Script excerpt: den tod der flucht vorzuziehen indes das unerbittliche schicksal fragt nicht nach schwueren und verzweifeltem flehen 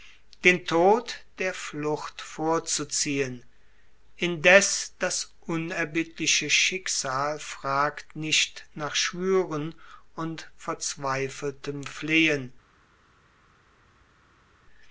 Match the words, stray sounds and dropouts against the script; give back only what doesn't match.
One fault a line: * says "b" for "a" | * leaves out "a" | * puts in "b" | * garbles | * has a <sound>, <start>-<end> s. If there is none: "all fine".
all fine